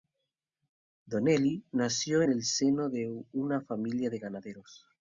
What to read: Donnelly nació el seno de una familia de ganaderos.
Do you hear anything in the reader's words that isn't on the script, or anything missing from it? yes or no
no